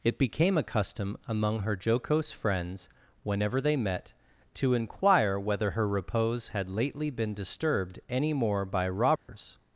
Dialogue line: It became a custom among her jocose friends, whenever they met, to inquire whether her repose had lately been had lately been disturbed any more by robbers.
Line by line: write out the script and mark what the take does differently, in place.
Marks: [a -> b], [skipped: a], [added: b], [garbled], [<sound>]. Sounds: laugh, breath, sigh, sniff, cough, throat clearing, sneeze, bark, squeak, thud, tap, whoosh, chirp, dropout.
It became a custom among her jocose friends, whenever they met, to inquire whether her repose had lately been [skipped: had lately been] disturbed any more by robbers. [dropout]